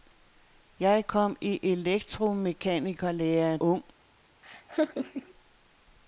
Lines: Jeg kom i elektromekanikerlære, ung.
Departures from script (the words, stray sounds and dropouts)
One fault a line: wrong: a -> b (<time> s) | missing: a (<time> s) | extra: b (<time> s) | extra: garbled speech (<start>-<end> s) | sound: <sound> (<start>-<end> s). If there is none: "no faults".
sound: laugh (4.4-5.3 s)